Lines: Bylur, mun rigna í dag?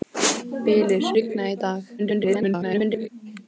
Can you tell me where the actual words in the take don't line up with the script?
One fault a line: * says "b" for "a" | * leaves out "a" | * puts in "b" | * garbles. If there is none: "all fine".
* leaves out "mun"
* garbles